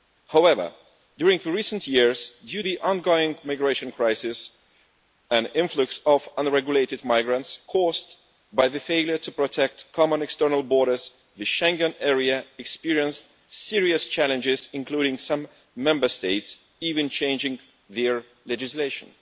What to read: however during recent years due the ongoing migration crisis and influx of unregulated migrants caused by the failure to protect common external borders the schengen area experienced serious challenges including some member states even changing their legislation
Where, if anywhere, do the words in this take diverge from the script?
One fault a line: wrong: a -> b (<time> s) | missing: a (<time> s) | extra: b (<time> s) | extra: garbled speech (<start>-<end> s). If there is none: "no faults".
no faults